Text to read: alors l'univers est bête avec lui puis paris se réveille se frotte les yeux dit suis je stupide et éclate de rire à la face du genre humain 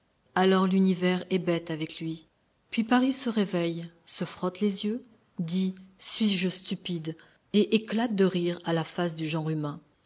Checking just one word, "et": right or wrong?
right